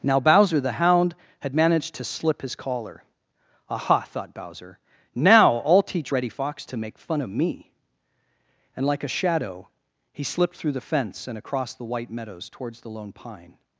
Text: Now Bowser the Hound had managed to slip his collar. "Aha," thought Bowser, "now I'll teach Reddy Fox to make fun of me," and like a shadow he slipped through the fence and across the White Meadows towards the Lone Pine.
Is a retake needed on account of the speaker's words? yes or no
no